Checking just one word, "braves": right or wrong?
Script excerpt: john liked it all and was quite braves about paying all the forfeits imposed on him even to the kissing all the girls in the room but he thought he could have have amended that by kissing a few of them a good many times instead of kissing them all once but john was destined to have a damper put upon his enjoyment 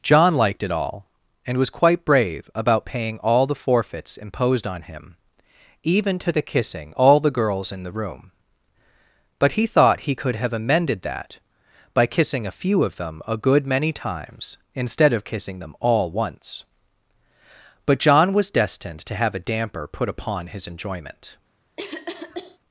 wrong